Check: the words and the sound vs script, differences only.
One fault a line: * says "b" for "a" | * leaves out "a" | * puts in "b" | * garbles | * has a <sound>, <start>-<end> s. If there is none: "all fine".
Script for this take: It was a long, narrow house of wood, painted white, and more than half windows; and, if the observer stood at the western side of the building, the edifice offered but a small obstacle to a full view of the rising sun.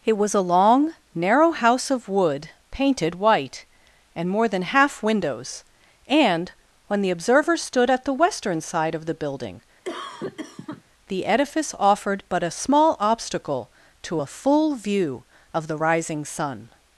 * says "when" for "if"
* has a cough, 9.8-10.8 s